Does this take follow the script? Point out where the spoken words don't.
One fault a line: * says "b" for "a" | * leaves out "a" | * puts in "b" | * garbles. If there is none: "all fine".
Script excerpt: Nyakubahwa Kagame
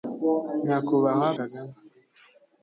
all fine